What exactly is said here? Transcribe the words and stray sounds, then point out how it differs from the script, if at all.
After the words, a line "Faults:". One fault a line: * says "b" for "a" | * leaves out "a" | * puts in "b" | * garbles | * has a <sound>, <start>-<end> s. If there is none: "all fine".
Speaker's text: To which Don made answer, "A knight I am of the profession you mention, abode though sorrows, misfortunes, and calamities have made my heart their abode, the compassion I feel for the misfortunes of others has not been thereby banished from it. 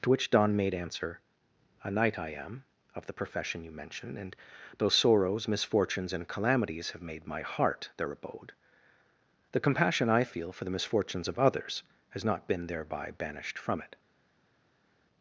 To which Don made answer, "A knight I am of the profession you mention, and though sorrows, misfortunes, and calamities have made my heart their abode, the compassion I feel for the misfortunes of others has not been thereby banished from it.
Faults:
* says "and" for "abode"